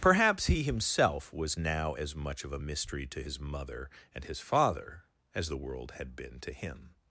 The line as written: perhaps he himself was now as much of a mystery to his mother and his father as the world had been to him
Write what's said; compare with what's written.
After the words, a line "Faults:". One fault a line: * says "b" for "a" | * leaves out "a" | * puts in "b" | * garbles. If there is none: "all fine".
perhaps he himself was now as much of a mystery to his mother and his father as the world had been to him
Faults:
all fine